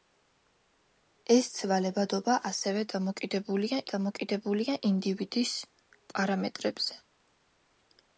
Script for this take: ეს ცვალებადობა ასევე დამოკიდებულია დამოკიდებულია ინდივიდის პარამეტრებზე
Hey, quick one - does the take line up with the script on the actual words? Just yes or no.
yes